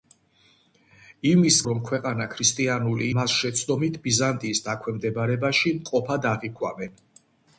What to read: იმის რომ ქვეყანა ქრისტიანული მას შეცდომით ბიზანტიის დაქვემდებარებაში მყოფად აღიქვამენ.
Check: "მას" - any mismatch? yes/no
no